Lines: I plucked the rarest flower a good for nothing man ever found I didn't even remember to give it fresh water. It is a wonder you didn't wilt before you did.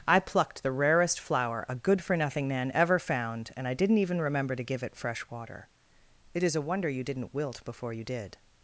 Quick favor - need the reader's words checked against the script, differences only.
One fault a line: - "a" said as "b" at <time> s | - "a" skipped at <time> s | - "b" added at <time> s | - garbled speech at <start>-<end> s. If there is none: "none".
- "and" added at 3.5 s